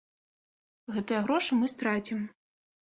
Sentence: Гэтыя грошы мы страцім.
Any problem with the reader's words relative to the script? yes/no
no